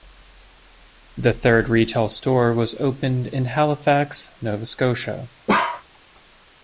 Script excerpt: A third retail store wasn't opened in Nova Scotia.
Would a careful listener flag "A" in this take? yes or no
yes